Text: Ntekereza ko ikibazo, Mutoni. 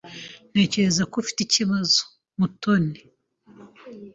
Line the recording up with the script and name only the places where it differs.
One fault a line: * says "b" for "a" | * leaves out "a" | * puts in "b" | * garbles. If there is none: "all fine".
* puts in "ufite"